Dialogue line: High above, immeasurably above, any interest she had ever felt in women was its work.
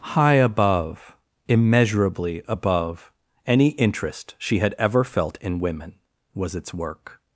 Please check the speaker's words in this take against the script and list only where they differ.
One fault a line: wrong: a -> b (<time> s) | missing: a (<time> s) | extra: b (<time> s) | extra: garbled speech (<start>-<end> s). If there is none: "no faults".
no faults